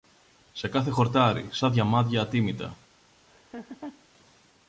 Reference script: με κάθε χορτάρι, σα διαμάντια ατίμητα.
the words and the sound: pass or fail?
fail